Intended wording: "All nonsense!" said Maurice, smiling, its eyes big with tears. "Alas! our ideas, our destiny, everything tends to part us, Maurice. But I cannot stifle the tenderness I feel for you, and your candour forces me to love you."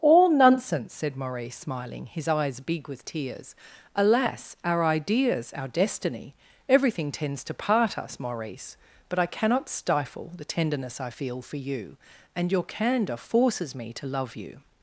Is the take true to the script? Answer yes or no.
no